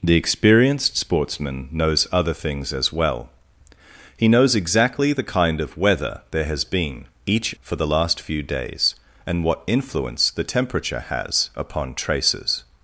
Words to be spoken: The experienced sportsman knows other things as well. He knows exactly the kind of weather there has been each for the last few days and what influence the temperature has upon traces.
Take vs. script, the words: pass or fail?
pass